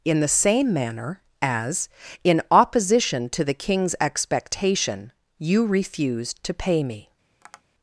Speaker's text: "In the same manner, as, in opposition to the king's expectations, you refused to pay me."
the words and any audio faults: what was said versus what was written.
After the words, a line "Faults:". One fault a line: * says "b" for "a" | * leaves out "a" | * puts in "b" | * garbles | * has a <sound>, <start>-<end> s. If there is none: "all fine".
"In the same manner, as, in opposition to the king's expectation, you refused to pay me."
Faults:
* says "expectation" for "expectations"
* has a tap, 7.4-7.6 s